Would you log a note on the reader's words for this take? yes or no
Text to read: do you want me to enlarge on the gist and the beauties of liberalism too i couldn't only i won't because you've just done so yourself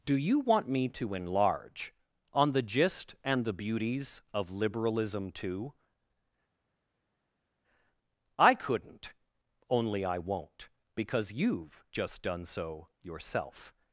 no